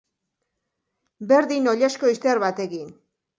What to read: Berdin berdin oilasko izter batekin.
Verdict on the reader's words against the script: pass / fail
fail